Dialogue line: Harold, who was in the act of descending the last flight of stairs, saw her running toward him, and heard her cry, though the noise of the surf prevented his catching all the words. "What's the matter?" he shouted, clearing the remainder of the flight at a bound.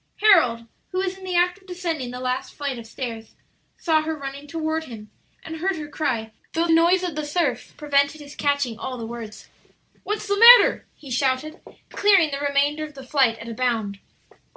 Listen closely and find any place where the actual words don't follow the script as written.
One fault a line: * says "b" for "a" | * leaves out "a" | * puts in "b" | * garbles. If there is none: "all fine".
* leaves out "the"